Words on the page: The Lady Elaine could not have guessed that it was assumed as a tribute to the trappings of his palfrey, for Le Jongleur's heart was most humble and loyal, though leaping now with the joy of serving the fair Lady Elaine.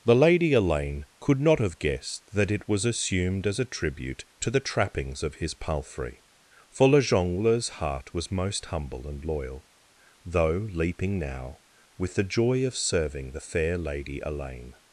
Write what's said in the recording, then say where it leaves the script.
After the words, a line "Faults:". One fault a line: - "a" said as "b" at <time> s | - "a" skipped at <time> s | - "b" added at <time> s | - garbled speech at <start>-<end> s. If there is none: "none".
The Lady Elaine could not have guessed that it was assumed as a tribute to the trappings of his palfrey, for Le Jongleur's heart was most humble and loyal, though leaping now with the joy of serving the fair Lady Elaine.
Faults:
none